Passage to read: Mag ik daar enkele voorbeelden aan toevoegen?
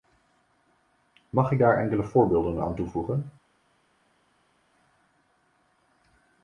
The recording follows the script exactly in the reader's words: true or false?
true